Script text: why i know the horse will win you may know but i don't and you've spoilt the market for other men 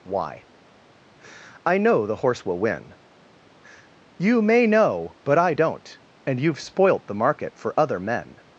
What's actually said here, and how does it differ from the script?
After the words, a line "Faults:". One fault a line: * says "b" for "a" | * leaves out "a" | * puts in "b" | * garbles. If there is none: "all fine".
why i know the horse will win you may know but i don't and you've spoilt the market for other men
Faults:
all fine